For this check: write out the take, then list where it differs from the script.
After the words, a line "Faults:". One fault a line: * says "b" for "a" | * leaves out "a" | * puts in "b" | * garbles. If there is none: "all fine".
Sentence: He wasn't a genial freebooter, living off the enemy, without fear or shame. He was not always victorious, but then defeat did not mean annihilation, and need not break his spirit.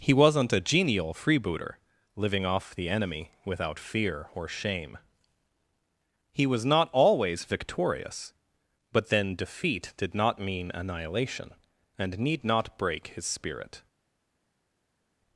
He wasn't a genial freebooter, living off the enemy, without fear or shame. He was not always victorious, but then defeat did not mean annihilation, and need not break his spirit.
Faults:
all fine